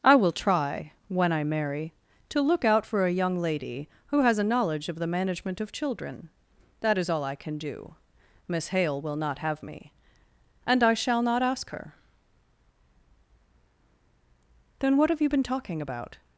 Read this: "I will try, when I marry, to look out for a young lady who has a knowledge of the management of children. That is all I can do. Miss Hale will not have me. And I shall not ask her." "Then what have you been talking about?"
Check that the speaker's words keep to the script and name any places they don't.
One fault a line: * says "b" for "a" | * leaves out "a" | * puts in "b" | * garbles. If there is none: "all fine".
all fine